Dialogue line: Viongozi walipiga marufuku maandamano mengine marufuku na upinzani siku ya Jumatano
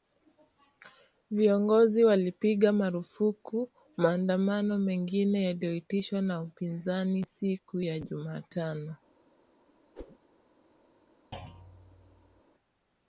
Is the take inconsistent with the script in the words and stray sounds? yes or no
yes